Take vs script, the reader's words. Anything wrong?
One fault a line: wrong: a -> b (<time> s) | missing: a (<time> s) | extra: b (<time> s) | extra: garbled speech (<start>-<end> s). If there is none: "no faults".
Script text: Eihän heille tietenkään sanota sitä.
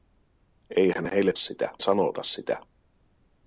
wrong: tietenkään -> sitä (1.3 s)